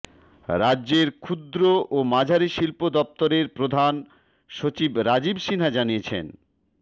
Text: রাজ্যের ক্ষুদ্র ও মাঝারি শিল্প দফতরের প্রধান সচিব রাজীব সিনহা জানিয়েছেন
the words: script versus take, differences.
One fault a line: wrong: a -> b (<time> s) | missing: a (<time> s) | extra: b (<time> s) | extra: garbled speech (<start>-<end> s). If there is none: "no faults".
no faults